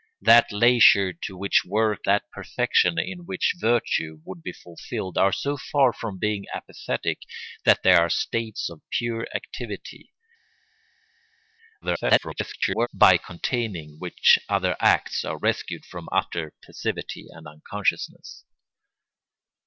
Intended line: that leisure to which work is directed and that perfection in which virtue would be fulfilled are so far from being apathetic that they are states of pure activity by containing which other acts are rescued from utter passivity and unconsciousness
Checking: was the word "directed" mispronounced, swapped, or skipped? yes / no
yes